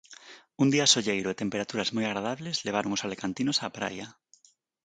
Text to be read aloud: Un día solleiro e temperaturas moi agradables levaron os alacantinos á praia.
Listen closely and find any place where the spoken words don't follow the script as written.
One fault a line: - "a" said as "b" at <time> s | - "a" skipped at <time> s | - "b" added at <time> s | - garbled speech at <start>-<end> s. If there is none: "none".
none